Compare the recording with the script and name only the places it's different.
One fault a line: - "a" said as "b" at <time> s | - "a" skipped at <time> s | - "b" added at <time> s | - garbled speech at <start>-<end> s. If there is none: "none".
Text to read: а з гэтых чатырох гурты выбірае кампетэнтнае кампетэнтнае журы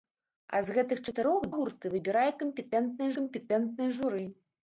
none